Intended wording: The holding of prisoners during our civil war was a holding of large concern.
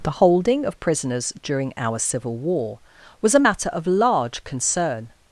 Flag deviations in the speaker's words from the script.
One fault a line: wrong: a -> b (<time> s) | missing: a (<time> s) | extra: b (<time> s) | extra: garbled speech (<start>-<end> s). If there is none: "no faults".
wrong: holding -> matter (3.4 s)